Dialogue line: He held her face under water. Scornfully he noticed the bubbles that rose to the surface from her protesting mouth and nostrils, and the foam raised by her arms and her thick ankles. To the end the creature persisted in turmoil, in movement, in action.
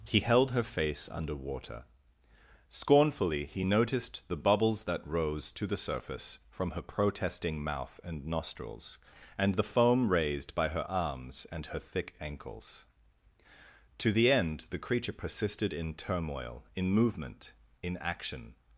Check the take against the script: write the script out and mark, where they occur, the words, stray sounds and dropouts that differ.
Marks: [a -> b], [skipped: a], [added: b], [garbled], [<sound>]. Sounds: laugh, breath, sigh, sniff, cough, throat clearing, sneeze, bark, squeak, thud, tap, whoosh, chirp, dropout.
He held her face under water. Scornfully he noticed the bubbles that rose to the surface from her protesting mouth and nostrils, and the foam raised by her arms and her thick ankles. To the end the creature persisted in turmoil, in movement, in action.